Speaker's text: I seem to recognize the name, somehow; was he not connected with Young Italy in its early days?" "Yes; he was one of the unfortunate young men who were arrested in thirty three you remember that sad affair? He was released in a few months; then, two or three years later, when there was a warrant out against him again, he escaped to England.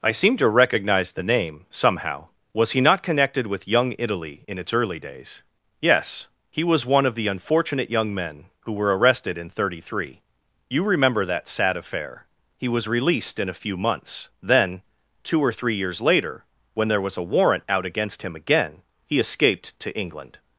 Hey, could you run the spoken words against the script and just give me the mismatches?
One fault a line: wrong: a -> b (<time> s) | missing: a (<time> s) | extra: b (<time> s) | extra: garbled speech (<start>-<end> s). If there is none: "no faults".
no faults